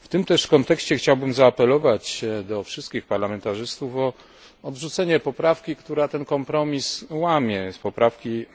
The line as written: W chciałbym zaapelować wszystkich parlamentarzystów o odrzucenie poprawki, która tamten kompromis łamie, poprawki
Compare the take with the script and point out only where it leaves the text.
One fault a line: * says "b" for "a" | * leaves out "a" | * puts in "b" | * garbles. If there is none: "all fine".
* puts in "tym też kontekście"
* puts in "do"
* says "ten" for "tamten"